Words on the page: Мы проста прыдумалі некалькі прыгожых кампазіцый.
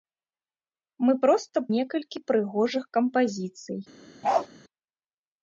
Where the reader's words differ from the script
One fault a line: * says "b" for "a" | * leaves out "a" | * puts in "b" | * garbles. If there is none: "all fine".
* leaves out "прыдумалі"